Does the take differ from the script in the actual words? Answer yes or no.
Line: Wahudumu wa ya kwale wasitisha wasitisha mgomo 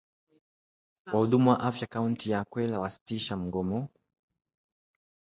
yes